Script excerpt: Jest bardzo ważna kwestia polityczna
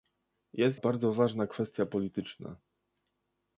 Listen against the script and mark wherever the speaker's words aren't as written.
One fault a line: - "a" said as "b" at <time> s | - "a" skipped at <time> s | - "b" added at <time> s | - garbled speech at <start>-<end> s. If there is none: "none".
none